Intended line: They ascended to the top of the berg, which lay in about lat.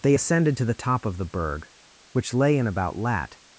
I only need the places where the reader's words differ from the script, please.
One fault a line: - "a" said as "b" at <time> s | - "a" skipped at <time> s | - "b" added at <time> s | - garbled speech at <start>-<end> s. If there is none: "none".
none